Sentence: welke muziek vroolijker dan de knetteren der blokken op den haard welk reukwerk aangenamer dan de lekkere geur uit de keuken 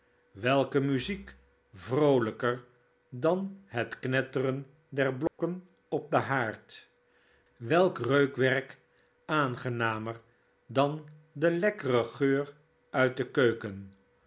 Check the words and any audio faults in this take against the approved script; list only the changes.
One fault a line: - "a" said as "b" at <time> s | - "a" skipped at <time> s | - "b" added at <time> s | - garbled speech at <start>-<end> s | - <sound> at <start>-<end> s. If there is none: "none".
- "de" said as "het" at 3.6 s
- dropout at 5.3-5.4 s